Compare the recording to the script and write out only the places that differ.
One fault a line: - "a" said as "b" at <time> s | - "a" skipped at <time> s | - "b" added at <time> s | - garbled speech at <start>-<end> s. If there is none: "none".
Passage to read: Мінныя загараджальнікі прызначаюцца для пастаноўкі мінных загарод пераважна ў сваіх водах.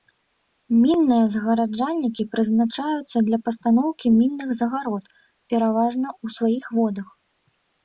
none